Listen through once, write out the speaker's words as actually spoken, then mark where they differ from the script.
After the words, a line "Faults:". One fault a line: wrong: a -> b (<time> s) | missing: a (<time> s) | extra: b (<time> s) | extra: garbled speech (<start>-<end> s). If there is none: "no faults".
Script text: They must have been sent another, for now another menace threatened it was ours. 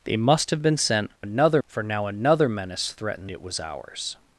They must have been sent another, for now another menace threatened it was ours.
Faults:
no faults